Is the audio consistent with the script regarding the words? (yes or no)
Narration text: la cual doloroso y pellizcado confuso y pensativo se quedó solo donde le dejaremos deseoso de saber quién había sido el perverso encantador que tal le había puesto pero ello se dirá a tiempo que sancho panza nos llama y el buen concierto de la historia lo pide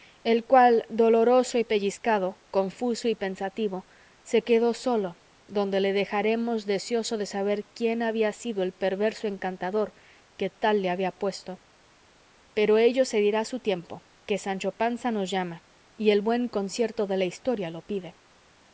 no